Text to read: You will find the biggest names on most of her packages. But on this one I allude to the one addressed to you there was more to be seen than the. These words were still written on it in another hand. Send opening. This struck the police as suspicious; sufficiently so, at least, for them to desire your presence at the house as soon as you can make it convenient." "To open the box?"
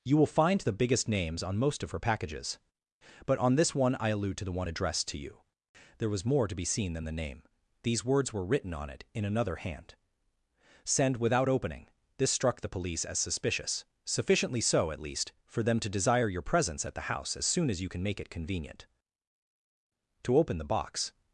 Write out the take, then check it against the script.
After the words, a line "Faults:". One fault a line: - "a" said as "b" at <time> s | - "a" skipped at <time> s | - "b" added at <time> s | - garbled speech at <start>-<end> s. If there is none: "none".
You will find the biggest names on most of her packages. But on this one I allude to the one addressed to you there was more to be seen than the name. These words were written on it in another hand. Send without opening. This struck the police as suspicious; sufficiently so, at least, for them to desire your presence at the house as soon as you can make it convenient." "To open the box?"
Faults:
- "name" added at 7.1 s
- "still" skipped at 8.5 s
- "without" added at 11.2 s